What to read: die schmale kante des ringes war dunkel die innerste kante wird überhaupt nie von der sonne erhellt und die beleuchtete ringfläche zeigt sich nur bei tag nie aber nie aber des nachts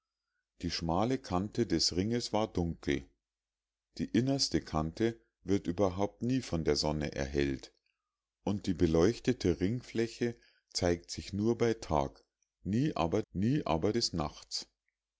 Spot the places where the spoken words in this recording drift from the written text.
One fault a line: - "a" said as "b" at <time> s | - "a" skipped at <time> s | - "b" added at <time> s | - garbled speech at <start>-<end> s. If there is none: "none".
none